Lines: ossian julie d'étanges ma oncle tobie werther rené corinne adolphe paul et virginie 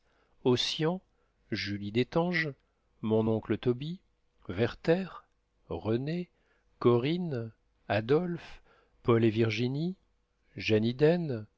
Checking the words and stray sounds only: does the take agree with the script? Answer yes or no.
no